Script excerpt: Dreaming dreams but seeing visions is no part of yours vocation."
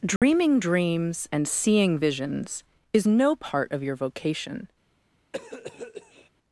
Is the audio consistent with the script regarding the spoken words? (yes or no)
no